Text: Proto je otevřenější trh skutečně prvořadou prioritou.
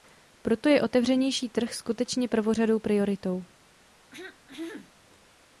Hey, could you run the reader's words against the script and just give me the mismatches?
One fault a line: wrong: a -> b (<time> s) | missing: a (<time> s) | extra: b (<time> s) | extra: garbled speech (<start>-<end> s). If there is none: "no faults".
no faults